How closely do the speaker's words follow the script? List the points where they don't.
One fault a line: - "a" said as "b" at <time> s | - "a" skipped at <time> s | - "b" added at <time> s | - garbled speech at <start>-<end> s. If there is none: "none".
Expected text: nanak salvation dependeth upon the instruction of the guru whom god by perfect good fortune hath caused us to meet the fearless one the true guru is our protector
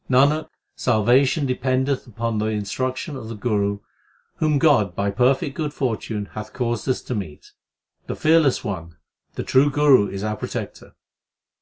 none